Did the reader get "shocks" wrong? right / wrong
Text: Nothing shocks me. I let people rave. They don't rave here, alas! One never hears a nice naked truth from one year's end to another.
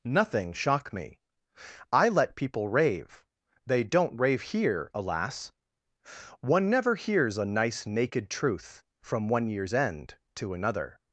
wrong